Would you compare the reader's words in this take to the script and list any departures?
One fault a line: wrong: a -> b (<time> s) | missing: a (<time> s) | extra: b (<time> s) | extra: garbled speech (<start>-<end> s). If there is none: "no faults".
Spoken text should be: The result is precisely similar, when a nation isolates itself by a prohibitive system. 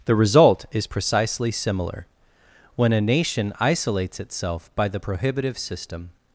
wrong: a -> the (4.9 s)